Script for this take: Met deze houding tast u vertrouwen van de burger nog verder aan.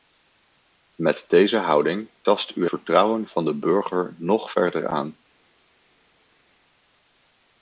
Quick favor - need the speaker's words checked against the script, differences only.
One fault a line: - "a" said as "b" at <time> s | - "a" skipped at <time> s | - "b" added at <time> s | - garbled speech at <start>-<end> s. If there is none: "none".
none